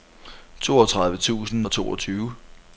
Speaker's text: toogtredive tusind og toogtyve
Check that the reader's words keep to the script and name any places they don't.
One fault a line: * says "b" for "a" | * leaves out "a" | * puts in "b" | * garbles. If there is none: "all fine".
all fine